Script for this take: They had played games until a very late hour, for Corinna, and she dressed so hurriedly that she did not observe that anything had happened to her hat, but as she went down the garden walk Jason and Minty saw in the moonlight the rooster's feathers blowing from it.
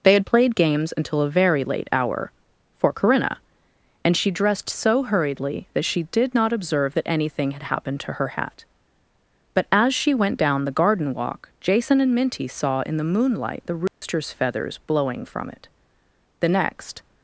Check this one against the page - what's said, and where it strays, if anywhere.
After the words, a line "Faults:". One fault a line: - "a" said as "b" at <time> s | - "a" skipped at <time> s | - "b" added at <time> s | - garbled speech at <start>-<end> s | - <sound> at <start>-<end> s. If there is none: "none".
They had played games until a very late hour, for Corinna, and she dressed so hurriedly that she did not observe that anything had happened to her hat, but as she went down the garden walk Jason and Minty saw in the moonlight the rooster's feathers blowing from it. The next
Faults:
- dropout at 13.9-14.0 s
- "The next" added at 16.4 s